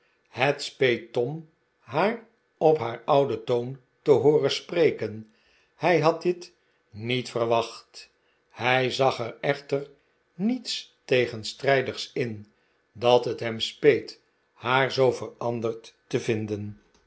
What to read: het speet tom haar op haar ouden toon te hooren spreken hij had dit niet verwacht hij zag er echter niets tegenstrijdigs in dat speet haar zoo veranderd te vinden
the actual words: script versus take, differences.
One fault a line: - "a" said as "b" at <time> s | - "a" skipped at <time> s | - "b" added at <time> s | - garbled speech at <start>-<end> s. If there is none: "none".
- "het hem" added at 13.2 s